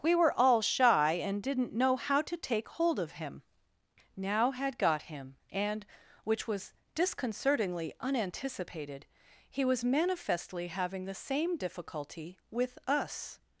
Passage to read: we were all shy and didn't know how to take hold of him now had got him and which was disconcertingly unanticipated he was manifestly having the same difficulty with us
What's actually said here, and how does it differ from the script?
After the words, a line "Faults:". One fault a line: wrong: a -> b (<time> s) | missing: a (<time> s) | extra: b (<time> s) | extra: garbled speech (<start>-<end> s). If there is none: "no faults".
we were all shy and didn't know how to take hold of him now had got him and which was disconcertingly unanticipated he was manifestly having the same difficulty with us
Faults:
no faults